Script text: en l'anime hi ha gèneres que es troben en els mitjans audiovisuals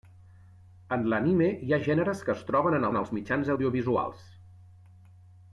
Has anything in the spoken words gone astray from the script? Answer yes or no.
yes